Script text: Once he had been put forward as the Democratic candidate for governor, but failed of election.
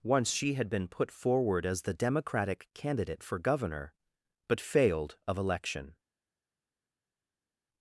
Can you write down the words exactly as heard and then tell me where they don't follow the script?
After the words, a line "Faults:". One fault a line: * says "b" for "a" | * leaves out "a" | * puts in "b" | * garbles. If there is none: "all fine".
Once she had been put forward as the Democratic candidate for governor, but failed of election.
Faults:
* says "she" for "he"